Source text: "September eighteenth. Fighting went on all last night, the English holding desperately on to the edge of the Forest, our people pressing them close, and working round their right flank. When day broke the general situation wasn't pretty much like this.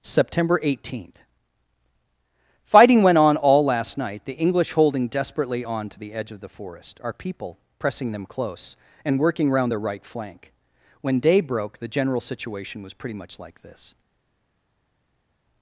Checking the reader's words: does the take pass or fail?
fail